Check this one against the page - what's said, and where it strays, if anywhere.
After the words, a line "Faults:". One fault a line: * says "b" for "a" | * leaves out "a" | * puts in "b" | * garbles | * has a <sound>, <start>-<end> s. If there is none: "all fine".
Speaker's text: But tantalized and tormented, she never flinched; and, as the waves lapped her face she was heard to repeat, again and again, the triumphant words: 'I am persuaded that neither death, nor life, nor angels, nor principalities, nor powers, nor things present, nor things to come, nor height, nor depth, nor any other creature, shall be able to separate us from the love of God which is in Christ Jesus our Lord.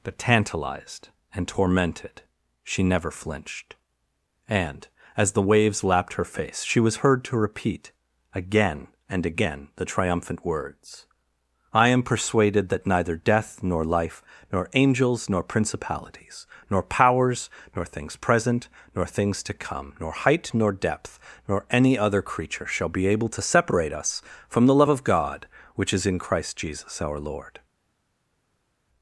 But tantalized and tormented, she never flinched; and, as the waves lapped her face she was heard to repeat, again and again, the triumphant words: 'I am persuaded that neither death, nor life, nor angels, nor principalities, nor powers, nor things present, nor things to come, nor height, nor depth, nor any other creature, shall be able to separate us from the love of God which is in Christ Jesus our Lord.
Faults:
all fine